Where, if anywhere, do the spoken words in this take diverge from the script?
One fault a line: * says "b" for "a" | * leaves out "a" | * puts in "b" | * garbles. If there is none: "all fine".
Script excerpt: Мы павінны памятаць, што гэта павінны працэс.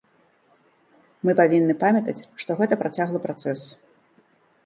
* says "працяглы" for "павінны"